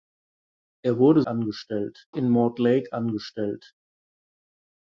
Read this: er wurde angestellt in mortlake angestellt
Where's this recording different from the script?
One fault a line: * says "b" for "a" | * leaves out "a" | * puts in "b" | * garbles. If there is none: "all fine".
all fine